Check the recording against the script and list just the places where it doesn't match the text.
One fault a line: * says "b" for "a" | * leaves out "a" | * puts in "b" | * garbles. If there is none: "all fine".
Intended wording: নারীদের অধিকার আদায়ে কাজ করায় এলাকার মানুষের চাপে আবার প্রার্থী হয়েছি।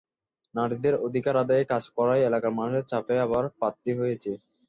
all fine